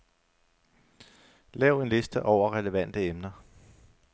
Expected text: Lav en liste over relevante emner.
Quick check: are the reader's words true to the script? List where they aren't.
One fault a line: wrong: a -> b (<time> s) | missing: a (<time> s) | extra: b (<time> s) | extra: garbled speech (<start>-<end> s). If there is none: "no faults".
no faults